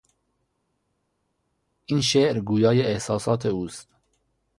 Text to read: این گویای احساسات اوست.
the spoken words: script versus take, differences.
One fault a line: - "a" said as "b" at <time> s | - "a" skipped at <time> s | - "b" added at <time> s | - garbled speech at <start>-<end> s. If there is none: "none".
- "شعر" added at 2.0 s